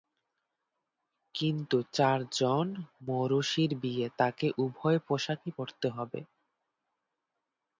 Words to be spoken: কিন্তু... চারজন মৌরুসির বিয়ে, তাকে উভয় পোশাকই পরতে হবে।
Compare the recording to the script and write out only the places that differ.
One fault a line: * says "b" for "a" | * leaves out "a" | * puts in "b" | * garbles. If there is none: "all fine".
all fine